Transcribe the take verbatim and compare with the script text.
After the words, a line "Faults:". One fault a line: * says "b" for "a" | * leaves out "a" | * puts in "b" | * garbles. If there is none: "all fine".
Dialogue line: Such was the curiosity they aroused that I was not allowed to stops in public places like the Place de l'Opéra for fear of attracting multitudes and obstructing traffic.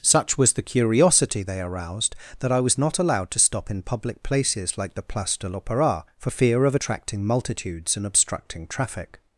Such was the curiosity they aroused that I was not allowed to stop in public places like the Place de l'Opéra for fear of attracting multitudes and obstructing traffic.
Faults:
* says "stop" for "stops"